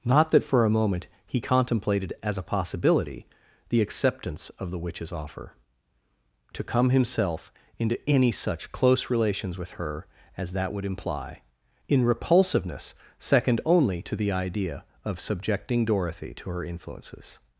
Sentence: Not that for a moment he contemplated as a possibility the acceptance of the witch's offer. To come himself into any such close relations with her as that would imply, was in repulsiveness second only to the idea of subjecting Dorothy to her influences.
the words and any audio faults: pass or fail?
fail